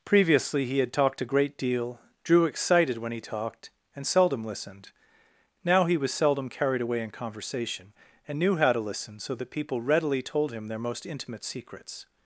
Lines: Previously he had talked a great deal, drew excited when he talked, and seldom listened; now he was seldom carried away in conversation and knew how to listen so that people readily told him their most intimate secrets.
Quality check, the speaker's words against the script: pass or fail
pass